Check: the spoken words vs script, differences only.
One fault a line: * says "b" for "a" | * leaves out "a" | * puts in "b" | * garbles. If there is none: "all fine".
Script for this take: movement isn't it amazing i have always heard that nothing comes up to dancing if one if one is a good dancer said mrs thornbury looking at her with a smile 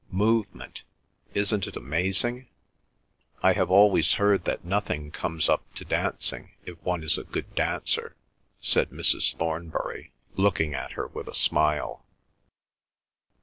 * leaves out "if one"